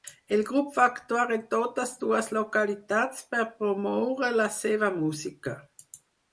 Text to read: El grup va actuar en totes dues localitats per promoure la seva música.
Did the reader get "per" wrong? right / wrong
right